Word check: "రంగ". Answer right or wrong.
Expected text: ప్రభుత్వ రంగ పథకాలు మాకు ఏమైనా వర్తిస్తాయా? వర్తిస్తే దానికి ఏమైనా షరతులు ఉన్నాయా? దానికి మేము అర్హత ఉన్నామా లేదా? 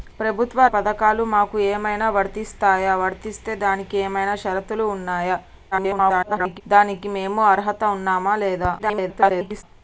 wrong